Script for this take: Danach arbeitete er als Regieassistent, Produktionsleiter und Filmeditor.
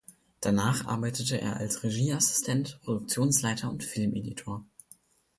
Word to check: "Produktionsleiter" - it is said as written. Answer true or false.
true